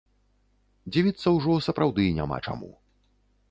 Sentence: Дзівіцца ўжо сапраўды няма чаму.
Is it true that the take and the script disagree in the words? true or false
false